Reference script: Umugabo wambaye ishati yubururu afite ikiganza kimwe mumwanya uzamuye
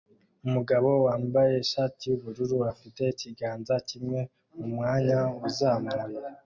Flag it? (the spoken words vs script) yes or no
no